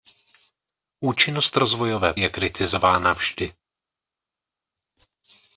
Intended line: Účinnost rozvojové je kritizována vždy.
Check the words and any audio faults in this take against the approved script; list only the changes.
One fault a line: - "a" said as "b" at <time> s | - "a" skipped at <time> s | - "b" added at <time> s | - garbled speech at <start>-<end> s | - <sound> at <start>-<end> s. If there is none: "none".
none